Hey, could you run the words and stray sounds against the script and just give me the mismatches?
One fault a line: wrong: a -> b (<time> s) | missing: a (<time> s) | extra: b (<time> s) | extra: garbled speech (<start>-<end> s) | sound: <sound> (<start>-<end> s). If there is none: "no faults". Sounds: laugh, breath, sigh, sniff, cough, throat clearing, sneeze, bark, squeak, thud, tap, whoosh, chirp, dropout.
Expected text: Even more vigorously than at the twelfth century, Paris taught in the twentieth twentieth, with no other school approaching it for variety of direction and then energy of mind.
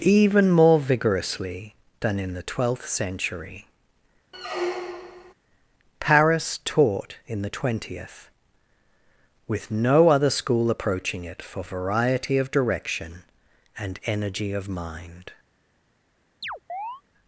wrong: at -> in (2.2 s)
sound: squeak (4.3-5.3 s)
missing: twentieth (8.3 s)
missing: then (14.0 s)
sound: chirp (16.4-17.0 s)